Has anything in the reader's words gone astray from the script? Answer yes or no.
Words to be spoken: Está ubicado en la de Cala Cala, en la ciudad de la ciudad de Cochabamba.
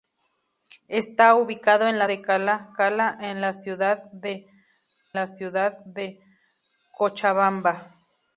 no